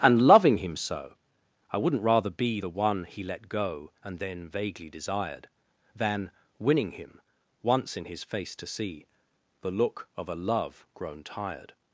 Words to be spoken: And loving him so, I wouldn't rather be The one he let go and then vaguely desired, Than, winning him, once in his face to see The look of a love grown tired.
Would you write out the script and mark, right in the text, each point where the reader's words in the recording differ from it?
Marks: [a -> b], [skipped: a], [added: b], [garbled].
And loving him so, I wouldn't rather be The one he let go and then vaguely desired, Than, winning him, once in his face to see The look of a love grown tired.